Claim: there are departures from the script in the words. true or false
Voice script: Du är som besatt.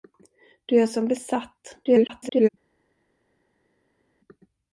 true